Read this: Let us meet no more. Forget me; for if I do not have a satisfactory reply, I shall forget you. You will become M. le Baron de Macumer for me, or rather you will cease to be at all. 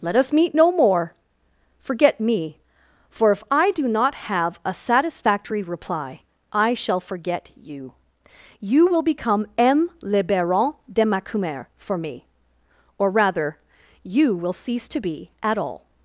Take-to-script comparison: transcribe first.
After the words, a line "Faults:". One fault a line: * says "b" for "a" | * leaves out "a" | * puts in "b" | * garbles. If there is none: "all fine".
Let us meet no more. Forget me; for if I do not have a satisfactory reply, I shall forget you. You will become M. le Baron de Macumer for me, or rather you will cease to be at all.
Faults:
all fine